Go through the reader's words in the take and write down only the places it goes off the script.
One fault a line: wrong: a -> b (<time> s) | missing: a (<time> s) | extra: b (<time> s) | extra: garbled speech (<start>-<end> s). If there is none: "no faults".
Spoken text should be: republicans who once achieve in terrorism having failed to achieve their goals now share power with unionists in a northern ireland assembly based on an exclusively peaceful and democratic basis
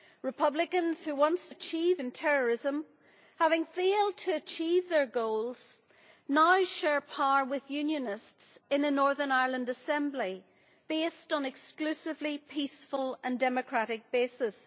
no faults